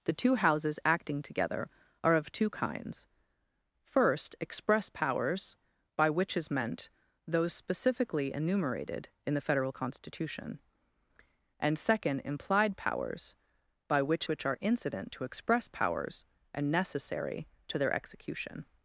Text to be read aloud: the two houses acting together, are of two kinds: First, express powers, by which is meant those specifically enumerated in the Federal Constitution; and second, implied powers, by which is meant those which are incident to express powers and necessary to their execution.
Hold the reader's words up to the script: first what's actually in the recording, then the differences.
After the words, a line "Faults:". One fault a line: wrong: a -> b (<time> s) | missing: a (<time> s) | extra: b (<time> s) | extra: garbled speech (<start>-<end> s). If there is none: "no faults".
the two houses acting together, are of two kinds: First, express powers, by which is meant those specifically enumerated in the Federal Constitution; and second, implied powers, by which which are incident to express powers and necessary to their execution.
Faults:
missing: is meant those (14.3 s)